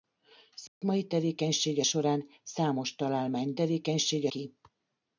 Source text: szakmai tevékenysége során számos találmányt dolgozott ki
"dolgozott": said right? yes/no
no